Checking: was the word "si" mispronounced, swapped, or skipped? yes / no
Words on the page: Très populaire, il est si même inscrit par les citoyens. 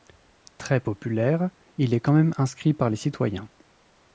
yes